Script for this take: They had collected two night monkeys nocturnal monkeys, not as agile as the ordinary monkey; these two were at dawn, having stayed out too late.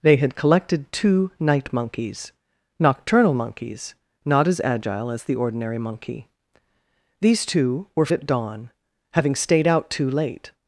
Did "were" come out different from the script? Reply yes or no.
no